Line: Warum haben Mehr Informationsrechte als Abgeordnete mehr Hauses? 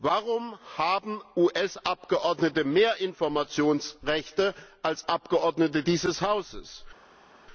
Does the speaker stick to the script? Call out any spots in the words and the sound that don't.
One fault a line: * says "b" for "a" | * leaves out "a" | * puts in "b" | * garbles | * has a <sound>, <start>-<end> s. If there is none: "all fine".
* puts in "US Abgeordnete"
* says "dieses" for "mehr"